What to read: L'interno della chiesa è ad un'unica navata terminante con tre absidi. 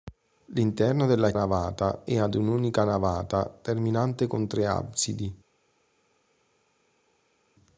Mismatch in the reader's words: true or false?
true